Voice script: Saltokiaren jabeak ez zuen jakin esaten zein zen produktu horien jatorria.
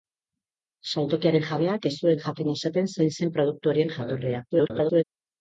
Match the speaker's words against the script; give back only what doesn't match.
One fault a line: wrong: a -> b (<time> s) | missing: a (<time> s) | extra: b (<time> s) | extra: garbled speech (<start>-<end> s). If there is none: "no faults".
extra: garbled speech (4.5-5.0 s)